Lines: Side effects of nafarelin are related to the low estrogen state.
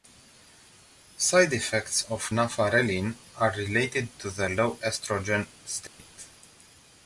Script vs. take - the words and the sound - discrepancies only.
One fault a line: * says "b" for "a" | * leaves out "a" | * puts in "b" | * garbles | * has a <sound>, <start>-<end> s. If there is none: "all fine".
* has a dropout, 5.9-6.0 s